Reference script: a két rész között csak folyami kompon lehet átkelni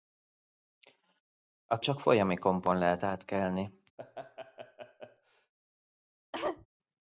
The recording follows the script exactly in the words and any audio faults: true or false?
false